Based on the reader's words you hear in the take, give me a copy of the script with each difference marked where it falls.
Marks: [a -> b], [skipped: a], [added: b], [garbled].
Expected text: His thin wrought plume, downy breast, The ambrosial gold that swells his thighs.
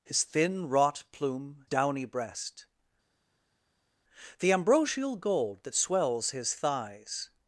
His thin wrought plume, downy breast, The ambrosial gold that swells his thighs.